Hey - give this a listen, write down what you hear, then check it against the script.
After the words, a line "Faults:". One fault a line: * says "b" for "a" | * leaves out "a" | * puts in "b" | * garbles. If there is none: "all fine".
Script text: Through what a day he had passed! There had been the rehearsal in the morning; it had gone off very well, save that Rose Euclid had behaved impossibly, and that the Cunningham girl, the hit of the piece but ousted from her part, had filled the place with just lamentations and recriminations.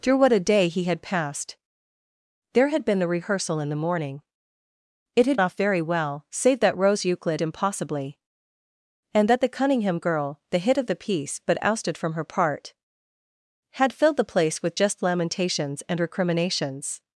Through what a day he had passed! There had been the rehearsal in the morning; it had off very well, save that Rose Euclid impossibly, and that the Cunningham girl, the hit of the piece but ousted from her part, had filled the place with just lamentations and recriminations.
Faults:
* leaves out "gone"
* leaves out "had behaved"